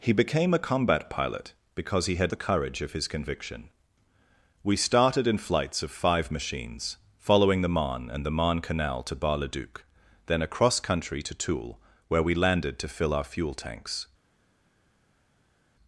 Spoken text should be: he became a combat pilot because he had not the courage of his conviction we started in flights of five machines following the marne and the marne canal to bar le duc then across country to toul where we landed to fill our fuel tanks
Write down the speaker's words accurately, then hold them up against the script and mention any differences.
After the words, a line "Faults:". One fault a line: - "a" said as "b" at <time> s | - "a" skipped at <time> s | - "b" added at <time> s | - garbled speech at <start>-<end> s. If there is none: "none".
he became a combat pilot because he had the courage of his conviction we started in flights of five machines following the marne and the marne canal to bar le duc then across country to toul where we landed to fill our fuel tanks
Faults:
- "not" skipped at 2.3 s